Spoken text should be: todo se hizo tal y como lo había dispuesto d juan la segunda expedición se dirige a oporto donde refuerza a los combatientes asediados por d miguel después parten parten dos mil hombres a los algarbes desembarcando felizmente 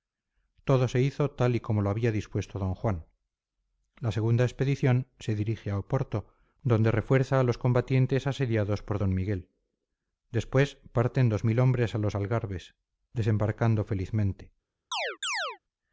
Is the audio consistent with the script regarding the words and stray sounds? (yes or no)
no